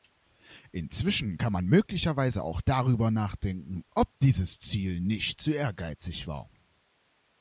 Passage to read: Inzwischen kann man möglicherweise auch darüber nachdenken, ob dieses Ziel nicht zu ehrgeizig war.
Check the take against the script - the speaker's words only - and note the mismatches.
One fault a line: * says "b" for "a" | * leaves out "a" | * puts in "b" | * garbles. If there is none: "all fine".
all fine